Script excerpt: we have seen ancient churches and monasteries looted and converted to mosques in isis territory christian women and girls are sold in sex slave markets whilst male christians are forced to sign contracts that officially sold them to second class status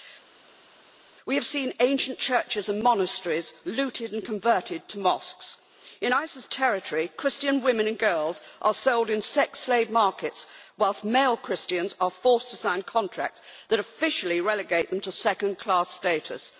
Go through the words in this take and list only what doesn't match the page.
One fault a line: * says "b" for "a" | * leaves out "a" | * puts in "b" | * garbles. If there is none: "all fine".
* says "relegate" for "sold"